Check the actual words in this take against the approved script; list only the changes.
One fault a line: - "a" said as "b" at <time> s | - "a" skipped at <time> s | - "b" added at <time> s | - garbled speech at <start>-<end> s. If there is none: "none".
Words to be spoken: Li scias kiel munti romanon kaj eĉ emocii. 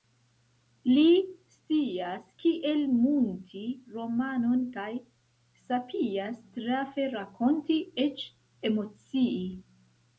- "sapias trafe rakonti" added at 5.7 s